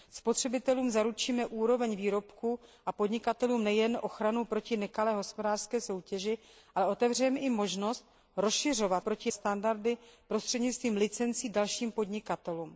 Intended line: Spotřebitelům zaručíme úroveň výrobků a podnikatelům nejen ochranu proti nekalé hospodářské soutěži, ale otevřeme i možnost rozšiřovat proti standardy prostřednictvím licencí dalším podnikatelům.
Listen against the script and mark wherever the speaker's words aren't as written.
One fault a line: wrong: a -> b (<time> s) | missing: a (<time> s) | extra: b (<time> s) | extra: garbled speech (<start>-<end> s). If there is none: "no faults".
no faults